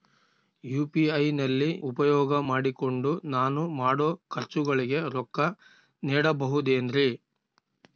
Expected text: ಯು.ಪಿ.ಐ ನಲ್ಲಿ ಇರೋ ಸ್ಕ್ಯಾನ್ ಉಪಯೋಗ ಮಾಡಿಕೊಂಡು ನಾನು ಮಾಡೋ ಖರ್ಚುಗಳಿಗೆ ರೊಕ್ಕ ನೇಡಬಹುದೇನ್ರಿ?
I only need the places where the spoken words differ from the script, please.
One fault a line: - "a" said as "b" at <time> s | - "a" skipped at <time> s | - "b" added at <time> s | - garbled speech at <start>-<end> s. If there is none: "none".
- "ಇರೋ ಸ್ಕ್ಯಾನ್" skipped at 1.7 s